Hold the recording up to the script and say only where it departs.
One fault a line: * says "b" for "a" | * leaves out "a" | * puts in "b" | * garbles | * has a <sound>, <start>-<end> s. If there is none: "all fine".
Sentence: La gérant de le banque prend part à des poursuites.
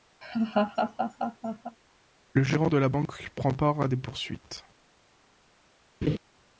* has a laugh, 0.2-1.8 s
* says "Le" for "La"
* says "la" for "le"
* has a laugh, 6.0-6.2 s